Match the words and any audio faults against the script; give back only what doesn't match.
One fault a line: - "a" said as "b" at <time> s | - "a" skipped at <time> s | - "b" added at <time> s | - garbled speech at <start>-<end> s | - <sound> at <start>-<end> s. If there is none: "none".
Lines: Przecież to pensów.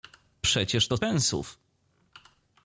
none